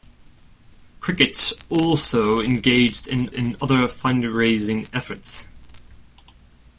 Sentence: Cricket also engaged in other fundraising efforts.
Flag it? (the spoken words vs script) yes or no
yes